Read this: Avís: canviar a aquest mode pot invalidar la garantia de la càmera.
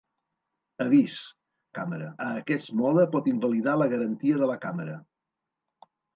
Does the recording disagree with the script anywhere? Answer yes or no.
yes